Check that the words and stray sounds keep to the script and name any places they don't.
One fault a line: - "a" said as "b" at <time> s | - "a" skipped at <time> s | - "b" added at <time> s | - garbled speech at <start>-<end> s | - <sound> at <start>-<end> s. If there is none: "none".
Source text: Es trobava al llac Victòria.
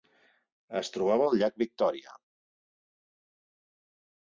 none